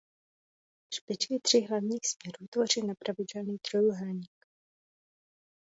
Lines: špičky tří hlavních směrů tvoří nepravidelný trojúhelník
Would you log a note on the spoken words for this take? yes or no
no